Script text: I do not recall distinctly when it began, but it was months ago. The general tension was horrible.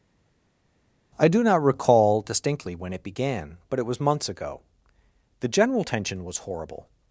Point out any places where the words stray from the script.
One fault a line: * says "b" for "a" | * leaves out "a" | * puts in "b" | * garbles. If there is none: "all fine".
all fine